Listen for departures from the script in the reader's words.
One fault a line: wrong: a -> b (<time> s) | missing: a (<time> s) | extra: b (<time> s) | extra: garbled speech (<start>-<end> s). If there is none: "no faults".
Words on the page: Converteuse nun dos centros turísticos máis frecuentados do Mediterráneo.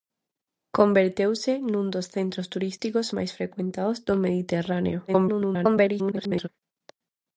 extra: garbled speech (5.1-6.5 s)